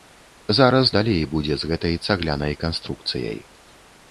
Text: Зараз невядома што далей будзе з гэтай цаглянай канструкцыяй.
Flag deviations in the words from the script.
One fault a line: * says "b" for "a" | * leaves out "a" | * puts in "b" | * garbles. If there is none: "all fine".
* leaves out "невядома што"